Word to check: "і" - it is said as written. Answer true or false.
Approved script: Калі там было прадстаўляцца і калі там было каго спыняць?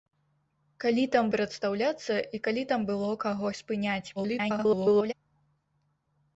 true